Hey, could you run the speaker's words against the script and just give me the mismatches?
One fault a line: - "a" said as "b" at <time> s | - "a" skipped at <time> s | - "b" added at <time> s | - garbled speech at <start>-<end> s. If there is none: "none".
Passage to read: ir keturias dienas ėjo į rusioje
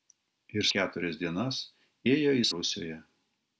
none